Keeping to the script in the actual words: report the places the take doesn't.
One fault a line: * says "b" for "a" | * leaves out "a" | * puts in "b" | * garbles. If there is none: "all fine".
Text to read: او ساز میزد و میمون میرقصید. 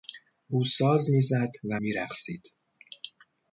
* leaves out "میمون"